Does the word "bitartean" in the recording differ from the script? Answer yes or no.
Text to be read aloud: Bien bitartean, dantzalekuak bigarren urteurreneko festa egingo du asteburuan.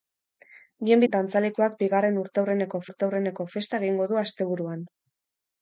yes